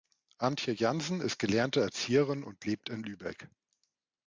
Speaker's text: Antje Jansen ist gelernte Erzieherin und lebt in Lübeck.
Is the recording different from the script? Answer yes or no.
no